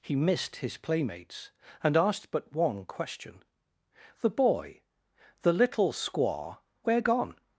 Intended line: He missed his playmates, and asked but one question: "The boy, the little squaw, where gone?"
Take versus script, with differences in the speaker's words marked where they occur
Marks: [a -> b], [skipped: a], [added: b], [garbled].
He missed his playmates, and asked but one question: "The boy, the little squaw, where gone?"